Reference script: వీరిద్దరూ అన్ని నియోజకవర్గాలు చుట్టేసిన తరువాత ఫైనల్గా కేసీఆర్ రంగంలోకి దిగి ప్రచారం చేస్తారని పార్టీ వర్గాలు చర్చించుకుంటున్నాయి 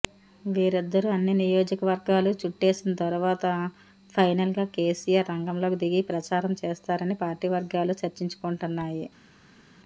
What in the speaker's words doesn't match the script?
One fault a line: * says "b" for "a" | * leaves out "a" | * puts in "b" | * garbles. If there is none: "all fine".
all fine